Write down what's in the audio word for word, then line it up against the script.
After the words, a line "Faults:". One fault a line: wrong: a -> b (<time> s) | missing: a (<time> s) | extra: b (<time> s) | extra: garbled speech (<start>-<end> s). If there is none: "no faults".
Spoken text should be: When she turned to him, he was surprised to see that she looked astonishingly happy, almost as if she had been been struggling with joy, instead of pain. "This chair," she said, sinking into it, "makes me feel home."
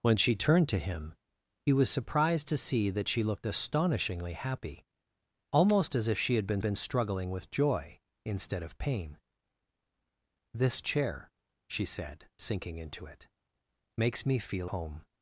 When she turned to him, he was surprised to see that she looked astonishingly happy, almost as if she had been been struggling with joy, instead of pain. "This chair," she said, sinking into it, "makes me feel home."
Faults:
no faults